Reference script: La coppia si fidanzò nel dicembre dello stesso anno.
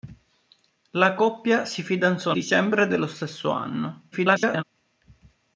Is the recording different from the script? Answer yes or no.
yes